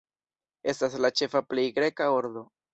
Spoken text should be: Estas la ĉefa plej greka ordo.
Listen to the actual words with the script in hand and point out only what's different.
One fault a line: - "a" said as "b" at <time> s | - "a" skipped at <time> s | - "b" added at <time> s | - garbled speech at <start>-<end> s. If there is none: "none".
none